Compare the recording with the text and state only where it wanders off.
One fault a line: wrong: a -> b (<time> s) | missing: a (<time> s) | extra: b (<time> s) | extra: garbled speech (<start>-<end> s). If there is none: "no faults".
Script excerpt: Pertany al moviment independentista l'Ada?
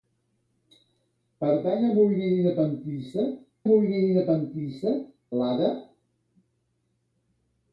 extra: moviment independentista (3.7 s)